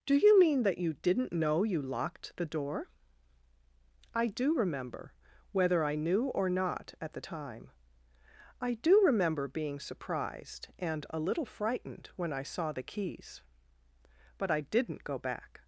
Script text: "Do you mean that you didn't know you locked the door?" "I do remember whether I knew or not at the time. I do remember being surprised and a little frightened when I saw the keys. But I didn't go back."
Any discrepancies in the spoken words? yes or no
no